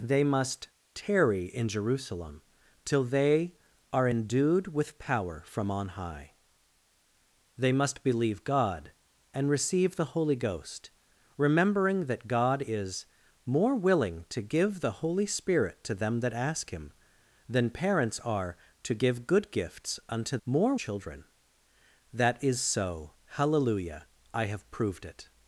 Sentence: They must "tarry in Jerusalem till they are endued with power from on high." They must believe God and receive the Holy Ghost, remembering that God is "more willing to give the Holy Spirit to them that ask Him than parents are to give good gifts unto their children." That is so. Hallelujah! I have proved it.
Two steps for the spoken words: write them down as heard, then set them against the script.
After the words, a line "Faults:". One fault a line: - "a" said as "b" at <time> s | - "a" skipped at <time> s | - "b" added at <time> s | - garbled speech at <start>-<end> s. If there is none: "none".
They must "tarry in Jerusalem till they are endued with power from on high." They must believe God and receive the Holy Ghost, remembering that God is "more willing to give the Holy Spirit to them that ask Him than parents are to give good gifts unto more children." That is so. Hallelujah! I have proved it.
Faults:
- "their" said as "more" at 20.4 s